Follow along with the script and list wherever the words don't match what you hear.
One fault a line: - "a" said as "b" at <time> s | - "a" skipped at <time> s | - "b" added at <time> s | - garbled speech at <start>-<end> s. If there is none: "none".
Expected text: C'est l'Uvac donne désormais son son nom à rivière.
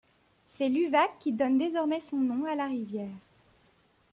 - "qui" added at 1.2 s
- "son" skipped at 2.2 s
- "la" added at 2.5 s